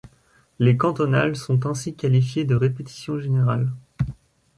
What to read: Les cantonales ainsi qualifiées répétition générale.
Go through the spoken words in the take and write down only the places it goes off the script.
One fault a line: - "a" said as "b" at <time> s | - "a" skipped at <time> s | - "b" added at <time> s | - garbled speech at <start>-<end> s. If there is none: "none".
- "sont" added at 1.4 s
- "de" added at 2.4 s